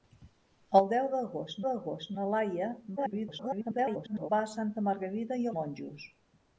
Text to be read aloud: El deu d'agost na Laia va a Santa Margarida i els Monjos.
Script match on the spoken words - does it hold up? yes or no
no